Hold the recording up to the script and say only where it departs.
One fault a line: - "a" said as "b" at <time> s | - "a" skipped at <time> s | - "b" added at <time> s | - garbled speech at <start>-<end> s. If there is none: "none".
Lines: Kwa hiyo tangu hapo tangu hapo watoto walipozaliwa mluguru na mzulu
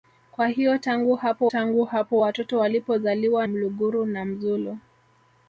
none